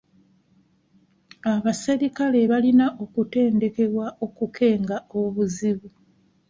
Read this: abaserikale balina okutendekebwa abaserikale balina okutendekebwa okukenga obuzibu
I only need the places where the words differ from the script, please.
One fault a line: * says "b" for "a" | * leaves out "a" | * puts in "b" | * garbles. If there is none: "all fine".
* leaves out "abaserikale balina okutendekebwa"